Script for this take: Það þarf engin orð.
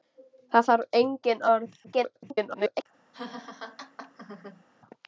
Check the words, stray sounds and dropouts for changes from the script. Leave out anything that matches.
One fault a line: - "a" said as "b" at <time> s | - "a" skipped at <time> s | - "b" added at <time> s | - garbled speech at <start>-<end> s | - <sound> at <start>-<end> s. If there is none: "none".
- garbled speech at 1.8-2.9 s
- laugh at 3.1-4.6 s